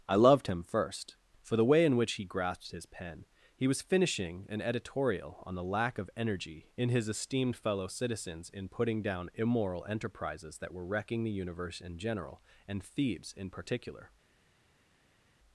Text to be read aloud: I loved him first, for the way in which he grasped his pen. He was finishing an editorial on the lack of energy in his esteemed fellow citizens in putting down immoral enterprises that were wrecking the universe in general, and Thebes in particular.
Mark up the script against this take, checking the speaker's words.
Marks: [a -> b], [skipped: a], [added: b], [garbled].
I loved him first, for the way in which he grasped his pen. He was finishing an editorial on the lack of energy in his esteemed fellow citizens in putting down immoral enterprises that were wrecking the universe in general, and Thebes in particular.